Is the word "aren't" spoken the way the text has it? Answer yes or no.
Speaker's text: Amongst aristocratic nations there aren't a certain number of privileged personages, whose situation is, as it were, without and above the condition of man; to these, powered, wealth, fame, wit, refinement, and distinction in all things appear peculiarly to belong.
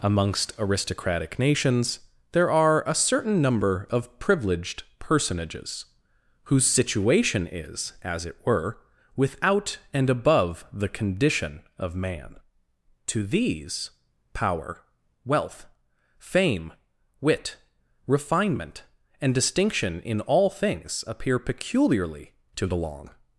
no